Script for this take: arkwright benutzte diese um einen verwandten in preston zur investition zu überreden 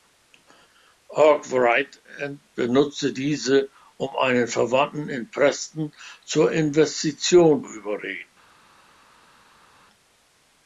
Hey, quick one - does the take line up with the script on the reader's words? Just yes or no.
no